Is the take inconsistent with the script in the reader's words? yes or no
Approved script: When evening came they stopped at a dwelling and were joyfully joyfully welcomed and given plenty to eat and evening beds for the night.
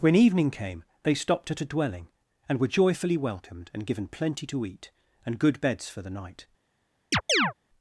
yes